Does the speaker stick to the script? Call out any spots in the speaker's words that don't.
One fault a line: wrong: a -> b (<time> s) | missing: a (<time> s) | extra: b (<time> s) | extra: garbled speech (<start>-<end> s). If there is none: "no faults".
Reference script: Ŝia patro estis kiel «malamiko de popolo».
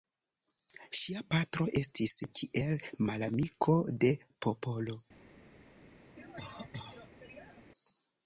no faults